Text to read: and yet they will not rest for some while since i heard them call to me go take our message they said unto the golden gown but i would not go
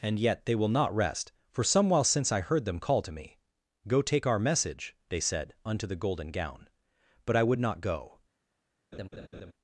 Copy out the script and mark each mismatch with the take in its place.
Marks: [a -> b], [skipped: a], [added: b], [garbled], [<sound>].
and yet they will not rest for some while since i heard them call to me go take our message they said unto the golden gown but i would not go [laugh]